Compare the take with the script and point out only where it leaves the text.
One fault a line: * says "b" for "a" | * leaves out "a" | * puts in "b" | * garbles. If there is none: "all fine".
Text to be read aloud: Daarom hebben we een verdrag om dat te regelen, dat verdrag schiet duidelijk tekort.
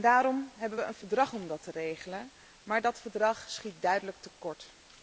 * puts in "maar"